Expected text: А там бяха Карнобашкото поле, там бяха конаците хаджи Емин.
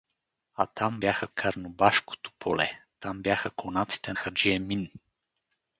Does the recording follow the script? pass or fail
pass